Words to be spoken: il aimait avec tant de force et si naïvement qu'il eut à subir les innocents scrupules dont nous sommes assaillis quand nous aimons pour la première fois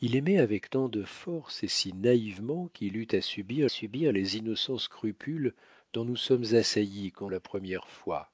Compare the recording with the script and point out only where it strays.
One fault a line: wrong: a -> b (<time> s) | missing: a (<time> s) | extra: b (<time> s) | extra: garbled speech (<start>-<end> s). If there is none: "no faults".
extra: subir (3.7 s)
missing: nous aimons pour (7.3 s)